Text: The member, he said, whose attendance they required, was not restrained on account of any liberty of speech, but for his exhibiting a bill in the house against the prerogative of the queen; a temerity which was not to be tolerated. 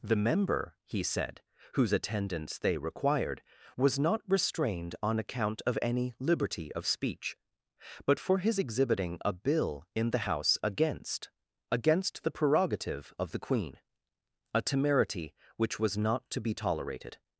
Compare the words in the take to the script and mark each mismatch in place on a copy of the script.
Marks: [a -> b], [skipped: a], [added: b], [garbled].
The member, he said, whose attendance they required, was not restrained on account of any liberty of speech, but for his exhibiting a bill in the house against [added: against] the prerogative of the queen; a temerity which was not to be tolerated.